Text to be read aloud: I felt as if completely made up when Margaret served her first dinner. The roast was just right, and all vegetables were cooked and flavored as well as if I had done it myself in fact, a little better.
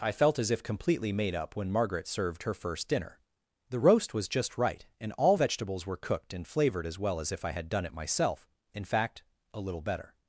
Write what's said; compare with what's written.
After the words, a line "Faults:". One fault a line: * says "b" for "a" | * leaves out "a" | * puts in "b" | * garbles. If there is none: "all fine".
I felt as if completely made up when Margaret served her first dinner. The roast was just right, and all vegetables were cooked and flavored as well as if I had done it myself in fact, a little better.
Faults:
all fine